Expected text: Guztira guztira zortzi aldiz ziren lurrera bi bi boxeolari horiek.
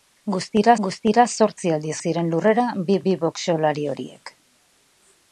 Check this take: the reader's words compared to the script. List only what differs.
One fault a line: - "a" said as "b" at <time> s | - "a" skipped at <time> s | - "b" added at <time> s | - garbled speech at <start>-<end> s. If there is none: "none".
none